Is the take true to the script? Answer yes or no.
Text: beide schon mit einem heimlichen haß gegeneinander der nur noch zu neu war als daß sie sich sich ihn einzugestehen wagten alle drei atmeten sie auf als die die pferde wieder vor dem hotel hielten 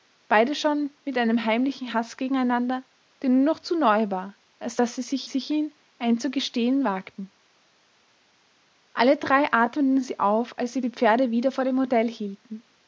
yes